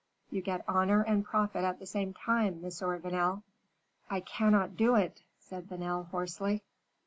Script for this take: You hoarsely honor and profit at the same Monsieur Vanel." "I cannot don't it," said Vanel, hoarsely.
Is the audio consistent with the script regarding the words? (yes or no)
no